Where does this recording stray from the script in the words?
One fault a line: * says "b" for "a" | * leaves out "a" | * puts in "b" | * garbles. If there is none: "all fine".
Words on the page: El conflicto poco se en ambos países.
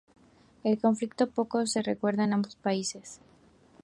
* puts in "recuerda"